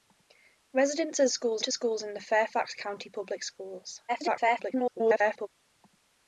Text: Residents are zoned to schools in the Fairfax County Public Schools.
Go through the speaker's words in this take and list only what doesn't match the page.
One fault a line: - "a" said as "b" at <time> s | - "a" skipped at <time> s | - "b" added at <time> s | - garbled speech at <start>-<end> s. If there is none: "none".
- "zoned" said as "schools" at 1.3 s
- garbled speech at 4.1-5.5 s